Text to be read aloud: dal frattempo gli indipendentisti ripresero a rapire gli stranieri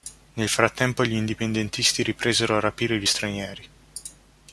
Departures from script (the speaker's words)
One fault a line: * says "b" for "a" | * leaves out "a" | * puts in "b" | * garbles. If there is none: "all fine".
* says "nel" for "dal"